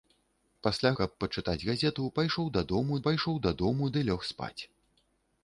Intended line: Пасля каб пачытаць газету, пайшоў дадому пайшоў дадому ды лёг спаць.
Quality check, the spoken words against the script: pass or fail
pass